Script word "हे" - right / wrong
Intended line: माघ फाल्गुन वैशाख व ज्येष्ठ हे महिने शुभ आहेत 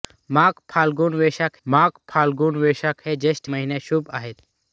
wrong